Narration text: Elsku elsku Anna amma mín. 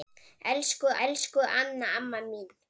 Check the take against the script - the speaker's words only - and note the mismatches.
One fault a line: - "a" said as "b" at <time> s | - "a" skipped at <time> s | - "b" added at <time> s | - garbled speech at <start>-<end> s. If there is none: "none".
none